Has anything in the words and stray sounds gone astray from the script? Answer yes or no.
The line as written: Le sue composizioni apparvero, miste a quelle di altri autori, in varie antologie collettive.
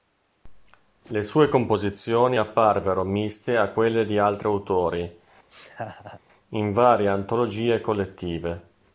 yes